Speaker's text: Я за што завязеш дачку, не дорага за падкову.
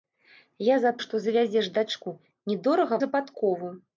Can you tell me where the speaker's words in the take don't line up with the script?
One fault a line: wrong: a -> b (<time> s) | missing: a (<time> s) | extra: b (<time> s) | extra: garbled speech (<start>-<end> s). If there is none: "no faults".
no faults